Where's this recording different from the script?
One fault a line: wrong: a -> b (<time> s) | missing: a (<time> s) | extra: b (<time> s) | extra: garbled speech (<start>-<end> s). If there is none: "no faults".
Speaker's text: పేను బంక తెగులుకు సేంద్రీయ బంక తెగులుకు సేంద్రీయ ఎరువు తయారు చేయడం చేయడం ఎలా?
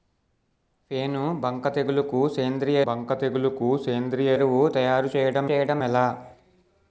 no faults